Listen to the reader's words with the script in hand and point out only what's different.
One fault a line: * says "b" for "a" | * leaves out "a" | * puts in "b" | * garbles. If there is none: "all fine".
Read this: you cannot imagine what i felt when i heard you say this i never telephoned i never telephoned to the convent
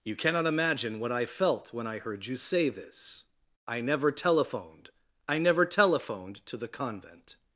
all fine